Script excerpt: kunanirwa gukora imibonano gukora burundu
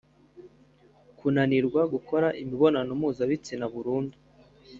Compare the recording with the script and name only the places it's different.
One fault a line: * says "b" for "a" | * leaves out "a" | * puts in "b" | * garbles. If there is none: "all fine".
* says "mpuzabitsina" for "gukora"